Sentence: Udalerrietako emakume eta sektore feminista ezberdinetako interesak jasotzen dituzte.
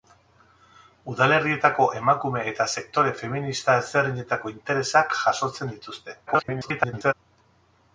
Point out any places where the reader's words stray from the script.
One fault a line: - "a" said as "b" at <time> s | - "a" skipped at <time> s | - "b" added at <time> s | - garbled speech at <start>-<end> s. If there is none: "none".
- garbled speech at 6.3-7.1 s